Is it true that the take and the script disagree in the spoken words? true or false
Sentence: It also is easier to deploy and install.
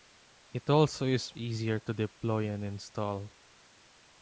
false